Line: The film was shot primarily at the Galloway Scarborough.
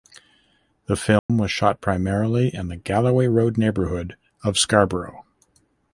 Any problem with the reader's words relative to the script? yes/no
yes